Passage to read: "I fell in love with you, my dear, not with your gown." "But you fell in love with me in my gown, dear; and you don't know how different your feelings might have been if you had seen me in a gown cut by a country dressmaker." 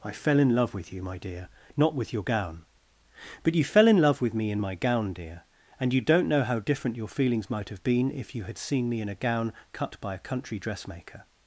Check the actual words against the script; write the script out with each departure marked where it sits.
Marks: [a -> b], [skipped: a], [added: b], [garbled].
"I fell in love with you, my dear, not with your gown." "But you fell in love with me in my gown, dear; and you don't know how different your feelings might have been if you had seen me in a gown cut by a country dressmaker."